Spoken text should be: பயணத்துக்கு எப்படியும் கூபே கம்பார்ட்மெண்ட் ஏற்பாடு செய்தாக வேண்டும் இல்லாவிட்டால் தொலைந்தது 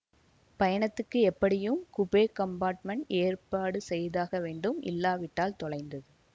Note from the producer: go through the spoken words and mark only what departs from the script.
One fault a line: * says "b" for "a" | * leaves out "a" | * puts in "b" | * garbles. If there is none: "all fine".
all fine